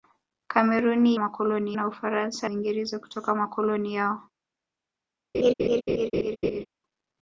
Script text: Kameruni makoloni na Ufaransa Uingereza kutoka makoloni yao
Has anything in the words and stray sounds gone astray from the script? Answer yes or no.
yes